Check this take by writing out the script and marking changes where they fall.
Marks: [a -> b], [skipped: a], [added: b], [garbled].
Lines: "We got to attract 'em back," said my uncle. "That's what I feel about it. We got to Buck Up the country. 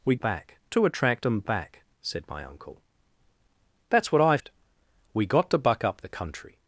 "We [got -> back] to attract 'em back," said my uncle. "That's what I [skipped: feel about] it. We got to Buck Up the country.